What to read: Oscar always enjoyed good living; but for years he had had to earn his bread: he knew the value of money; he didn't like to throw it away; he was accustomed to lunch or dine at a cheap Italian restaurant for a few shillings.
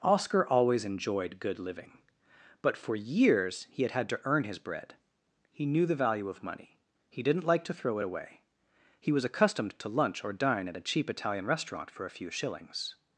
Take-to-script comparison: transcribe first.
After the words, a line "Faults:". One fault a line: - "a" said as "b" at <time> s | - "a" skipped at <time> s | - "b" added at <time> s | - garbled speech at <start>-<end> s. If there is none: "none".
Oscar always enjoyed good living; but for years he had had to earn his bread: he knew the value of money; he didn't like to throw it away; he was accustomed to lunch or dine at a cheap Italian restaurant for a few shillings.
Faults:
none